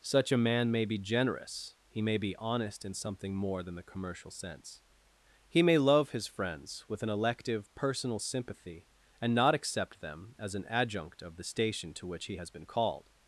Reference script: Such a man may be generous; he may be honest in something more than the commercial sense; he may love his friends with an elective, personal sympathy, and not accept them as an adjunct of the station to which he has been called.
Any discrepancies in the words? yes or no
no